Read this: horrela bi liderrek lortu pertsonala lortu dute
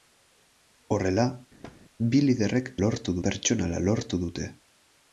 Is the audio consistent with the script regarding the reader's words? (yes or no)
yes